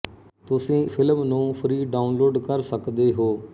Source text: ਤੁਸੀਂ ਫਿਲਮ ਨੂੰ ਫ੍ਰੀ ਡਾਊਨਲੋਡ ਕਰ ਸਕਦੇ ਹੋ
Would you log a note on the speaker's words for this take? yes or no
no